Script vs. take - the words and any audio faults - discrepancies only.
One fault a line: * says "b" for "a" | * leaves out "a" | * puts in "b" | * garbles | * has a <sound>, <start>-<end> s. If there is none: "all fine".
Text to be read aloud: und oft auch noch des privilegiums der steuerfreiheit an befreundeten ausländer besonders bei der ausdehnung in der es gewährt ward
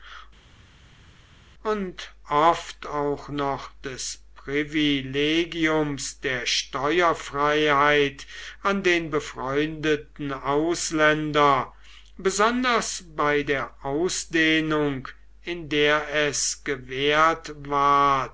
* puts in "den"